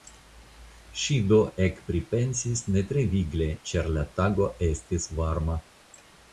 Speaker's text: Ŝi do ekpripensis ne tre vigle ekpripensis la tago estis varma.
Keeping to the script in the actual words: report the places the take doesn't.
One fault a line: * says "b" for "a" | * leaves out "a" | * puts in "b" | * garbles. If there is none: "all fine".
* says "ĉar" for "ekpripensis"